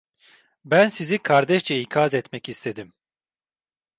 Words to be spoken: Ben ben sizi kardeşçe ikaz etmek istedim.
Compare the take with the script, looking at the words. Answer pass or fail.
fail